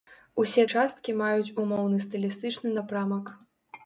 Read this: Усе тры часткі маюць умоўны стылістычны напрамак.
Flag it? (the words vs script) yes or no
yes